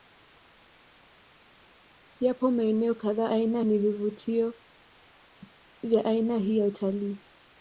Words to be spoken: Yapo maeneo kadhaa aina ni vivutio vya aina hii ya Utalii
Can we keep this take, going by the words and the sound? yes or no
yes